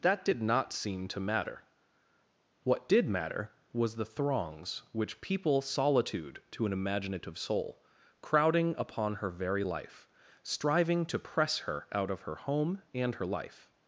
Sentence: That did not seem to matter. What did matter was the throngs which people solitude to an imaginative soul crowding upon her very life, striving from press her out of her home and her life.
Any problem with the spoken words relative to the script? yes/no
yes